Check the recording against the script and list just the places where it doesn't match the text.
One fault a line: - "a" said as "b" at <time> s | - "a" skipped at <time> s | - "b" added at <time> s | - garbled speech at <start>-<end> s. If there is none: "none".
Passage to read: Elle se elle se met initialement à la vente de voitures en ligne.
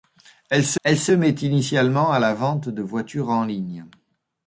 none